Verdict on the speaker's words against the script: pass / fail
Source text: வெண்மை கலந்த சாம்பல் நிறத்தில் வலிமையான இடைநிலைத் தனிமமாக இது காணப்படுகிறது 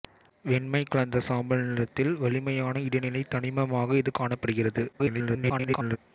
fail